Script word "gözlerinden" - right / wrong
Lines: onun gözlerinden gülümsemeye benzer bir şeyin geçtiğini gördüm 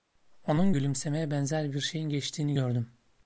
wrong